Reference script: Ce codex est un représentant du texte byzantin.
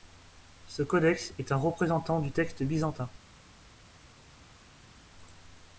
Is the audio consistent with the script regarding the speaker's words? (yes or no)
yes